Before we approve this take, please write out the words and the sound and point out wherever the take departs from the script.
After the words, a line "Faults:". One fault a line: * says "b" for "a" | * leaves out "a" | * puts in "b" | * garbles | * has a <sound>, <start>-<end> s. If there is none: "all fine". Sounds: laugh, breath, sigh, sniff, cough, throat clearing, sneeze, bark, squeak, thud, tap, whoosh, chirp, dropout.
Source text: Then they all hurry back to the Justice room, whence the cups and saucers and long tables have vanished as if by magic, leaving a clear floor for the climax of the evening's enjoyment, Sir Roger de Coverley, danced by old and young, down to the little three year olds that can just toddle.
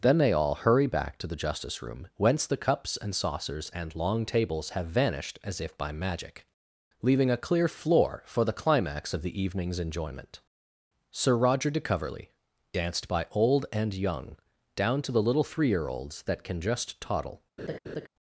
Then they all hurry back to the Justice room, whence the cups and saucers and long tables have vanished as if by magic, leaving a clear floor for the climax of the evening's enjoyment, Sir Roger de Coverley, danced by old and young, down to the little three year olds that can just toddle.
Faults:
* has a laugh, 17.6-18.1 s